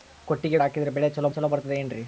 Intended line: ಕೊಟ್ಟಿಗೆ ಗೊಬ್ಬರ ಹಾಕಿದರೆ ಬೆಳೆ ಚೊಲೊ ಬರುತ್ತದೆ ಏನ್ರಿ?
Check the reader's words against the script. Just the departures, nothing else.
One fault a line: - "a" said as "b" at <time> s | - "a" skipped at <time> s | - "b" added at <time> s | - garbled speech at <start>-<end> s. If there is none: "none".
- "ಗೊಬ್ಬರ" skipped at 0.6 s
- "ಚೊಲೊ" added at 1.3 s